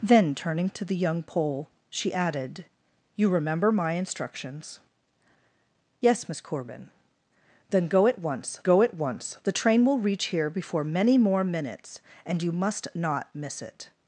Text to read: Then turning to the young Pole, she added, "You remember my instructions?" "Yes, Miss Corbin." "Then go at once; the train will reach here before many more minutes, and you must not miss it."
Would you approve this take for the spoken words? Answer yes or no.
no